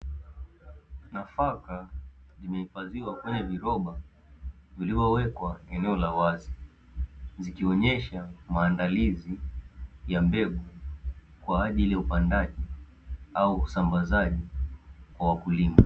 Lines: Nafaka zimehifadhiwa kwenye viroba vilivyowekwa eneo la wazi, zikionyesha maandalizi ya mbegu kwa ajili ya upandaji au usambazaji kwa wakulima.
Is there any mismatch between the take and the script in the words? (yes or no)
no